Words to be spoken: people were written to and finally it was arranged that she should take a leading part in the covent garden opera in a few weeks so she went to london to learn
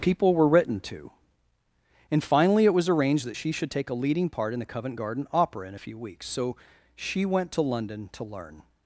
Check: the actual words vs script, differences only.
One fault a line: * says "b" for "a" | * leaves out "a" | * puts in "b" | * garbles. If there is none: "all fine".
all fine